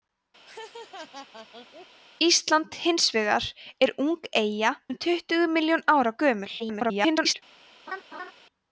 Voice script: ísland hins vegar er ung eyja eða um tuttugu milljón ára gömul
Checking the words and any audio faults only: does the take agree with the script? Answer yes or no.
no